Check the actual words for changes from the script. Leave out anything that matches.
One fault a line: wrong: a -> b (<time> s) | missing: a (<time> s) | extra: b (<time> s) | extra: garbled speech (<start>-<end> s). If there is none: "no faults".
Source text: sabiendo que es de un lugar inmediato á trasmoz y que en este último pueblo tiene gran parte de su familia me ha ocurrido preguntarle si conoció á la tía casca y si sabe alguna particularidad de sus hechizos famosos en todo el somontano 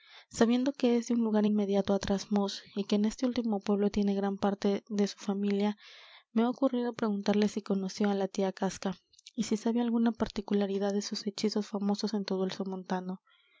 no faults